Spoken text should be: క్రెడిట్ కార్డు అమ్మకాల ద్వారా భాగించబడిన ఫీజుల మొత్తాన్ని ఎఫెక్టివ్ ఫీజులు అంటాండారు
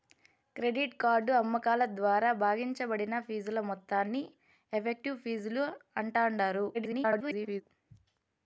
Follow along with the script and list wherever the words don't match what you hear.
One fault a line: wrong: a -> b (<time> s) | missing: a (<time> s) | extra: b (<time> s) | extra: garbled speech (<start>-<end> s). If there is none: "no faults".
extra: garbled speech (6.7-7.6 s)